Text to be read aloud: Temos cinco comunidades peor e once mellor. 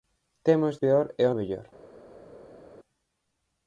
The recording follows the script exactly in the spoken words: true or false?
false